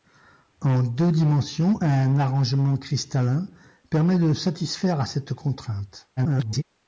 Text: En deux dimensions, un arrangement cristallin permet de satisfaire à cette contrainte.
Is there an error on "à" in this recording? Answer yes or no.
no